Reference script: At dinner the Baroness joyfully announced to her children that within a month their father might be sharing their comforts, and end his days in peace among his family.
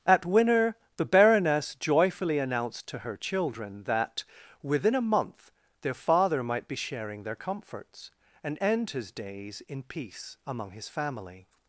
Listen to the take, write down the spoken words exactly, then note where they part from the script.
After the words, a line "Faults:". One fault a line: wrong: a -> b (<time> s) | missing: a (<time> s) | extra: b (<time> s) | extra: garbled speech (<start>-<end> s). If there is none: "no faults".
At winner the Baroness joyfully announced to her children that within a month their father might be sharing their comforts, and end his days in peace among his family.
Faults:
wrong: dinner -> winner (0.2 s)